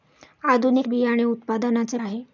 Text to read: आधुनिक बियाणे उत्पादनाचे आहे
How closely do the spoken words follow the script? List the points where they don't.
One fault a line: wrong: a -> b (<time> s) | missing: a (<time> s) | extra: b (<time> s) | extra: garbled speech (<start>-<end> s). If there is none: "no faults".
no faults